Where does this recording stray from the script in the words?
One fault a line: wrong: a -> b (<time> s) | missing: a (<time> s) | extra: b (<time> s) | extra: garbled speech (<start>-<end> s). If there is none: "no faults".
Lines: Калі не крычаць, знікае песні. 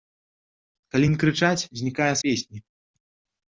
no faults